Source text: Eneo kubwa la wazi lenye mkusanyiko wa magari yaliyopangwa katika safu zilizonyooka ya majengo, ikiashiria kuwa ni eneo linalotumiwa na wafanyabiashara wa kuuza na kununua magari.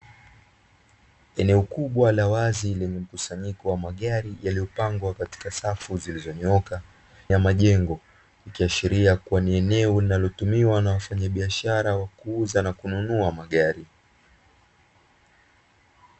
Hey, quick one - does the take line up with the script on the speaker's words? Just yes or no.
yes